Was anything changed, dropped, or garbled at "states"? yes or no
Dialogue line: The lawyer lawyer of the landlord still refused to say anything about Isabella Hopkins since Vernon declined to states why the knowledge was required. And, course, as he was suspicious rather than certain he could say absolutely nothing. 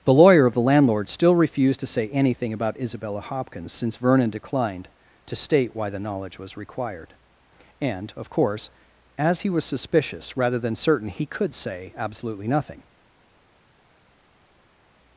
yes